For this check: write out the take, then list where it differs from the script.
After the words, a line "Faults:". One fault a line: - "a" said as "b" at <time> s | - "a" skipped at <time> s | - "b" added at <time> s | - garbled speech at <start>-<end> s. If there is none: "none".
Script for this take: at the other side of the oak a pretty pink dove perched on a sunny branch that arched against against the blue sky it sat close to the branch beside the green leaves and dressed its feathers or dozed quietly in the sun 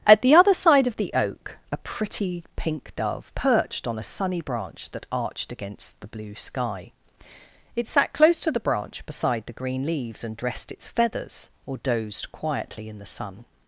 at the other side of the oak a pretty pink dove perched on a sunny branch that arched against the blue sky it sat close to the branch beside the green leaves and dressed its feathers or dozed quietly in the sun
Faults:
- "against" skipped at 6.0 s